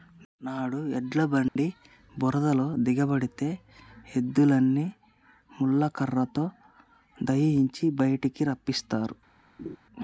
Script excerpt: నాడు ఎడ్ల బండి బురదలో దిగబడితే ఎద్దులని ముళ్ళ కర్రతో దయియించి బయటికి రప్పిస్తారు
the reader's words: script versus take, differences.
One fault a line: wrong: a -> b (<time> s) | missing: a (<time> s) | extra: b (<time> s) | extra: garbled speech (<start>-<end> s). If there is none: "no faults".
no faults